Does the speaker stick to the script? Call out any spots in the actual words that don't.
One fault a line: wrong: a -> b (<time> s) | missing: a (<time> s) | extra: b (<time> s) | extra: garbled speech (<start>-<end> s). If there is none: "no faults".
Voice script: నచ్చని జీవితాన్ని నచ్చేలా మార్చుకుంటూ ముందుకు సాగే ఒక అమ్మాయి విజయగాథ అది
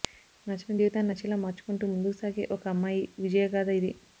wrong: అది -> ఇది (3.8 s)